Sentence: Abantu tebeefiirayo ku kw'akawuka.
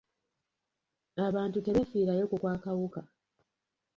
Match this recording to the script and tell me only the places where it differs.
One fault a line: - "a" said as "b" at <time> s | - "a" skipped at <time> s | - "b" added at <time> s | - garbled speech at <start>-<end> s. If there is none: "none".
none